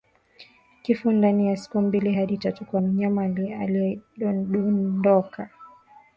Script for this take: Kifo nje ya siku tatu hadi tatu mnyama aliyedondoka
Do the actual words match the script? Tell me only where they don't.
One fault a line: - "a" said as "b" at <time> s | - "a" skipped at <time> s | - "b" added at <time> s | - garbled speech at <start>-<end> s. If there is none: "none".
- "nje" said as "ndani" at 1.1 s
- "tatu" said as "mbili" at 1.8 s
- "kwa" added at 2.6 s